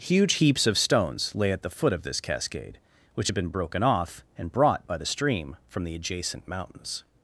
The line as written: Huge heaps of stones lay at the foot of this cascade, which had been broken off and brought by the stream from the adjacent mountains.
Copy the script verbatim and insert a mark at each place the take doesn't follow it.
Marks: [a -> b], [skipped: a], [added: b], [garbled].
Huge heaps of stones lay at the foot of this cascade, which had been broken off and brought by the stream from the adjacent mountains.